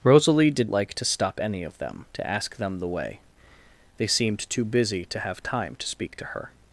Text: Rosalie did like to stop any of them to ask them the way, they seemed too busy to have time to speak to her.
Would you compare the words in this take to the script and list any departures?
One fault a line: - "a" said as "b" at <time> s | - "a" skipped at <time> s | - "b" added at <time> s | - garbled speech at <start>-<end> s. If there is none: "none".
none